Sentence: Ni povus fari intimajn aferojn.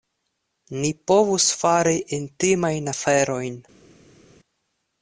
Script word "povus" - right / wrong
right